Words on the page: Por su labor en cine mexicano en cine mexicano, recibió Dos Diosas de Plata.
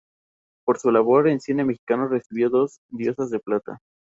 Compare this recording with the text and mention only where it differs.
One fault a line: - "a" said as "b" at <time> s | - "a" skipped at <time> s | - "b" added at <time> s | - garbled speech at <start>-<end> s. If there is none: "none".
- "en cine mexicano" skipped at 2.1 s